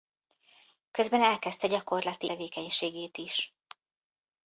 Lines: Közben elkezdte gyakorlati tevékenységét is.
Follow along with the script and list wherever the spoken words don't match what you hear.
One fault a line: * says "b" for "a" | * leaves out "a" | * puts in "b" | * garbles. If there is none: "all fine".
all fine